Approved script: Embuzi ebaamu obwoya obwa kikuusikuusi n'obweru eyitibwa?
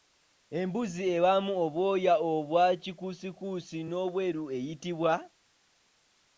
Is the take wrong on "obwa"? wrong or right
right